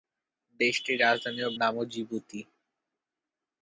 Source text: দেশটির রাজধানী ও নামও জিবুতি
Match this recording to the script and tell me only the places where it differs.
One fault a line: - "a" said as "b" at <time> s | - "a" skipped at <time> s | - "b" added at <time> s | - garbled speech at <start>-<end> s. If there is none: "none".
none